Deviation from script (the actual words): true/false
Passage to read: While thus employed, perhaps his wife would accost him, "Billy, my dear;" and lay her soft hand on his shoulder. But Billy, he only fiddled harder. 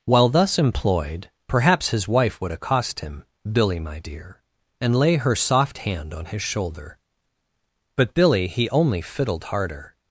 false